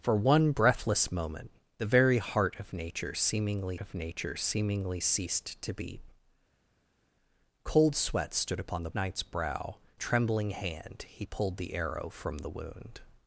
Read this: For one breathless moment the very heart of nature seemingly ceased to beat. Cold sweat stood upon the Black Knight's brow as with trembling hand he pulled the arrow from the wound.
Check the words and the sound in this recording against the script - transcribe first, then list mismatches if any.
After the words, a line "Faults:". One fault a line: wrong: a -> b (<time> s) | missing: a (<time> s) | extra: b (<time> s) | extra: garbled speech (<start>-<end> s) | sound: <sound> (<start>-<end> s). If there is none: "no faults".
For one breathless moment the very heart of nature seemingly of nature seemingly ceased to beat. Cold sweat stood upon the Knight's brow trembling hand he pulled the arrow from the wound.
Faults:
extra: of nature seemingly (3.8 s)
missing: Black (8.9 s)
missing: as with (9.8 s)